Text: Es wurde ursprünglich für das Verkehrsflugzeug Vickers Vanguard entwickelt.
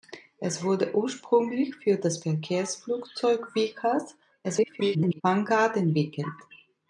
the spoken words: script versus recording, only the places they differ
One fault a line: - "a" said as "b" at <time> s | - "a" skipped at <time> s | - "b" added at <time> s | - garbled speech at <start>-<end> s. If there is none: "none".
- garbled speech at 4.4-5.2 s